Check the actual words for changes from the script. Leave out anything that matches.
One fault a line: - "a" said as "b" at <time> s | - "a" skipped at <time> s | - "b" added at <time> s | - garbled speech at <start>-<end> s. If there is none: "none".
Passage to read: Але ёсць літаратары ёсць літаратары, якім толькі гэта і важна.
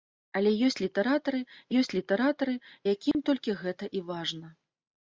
none